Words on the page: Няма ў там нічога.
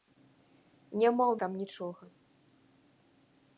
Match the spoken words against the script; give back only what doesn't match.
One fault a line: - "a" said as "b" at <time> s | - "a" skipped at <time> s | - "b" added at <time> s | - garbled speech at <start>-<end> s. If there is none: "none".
none